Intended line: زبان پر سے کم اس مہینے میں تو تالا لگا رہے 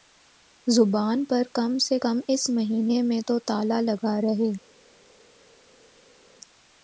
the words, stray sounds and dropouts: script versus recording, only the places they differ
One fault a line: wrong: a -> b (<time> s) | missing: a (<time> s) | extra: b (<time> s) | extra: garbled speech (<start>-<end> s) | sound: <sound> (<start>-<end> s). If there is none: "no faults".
extra: کم (1.5 s)